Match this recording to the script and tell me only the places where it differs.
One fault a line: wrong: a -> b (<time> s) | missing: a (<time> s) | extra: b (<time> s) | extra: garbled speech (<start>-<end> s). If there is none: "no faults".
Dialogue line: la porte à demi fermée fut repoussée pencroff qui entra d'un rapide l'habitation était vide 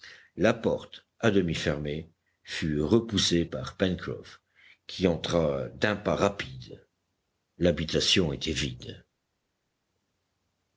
extra: par (3.4 s)
extra: pas (6.0 s)